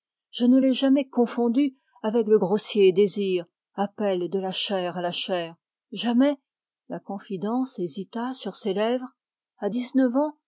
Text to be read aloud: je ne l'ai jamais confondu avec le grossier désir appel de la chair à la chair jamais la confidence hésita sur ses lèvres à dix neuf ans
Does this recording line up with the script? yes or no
yes